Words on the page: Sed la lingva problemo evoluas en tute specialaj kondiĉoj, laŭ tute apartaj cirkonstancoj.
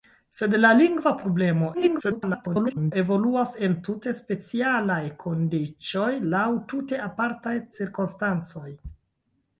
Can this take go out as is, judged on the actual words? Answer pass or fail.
fail